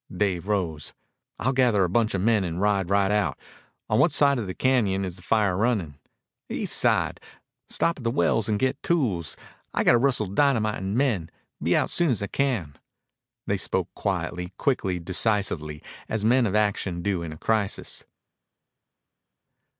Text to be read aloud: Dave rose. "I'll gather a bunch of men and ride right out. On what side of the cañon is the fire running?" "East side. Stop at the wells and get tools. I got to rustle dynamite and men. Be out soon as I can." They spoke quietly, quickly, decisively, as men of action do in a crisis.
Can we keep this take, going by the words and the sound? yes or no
yes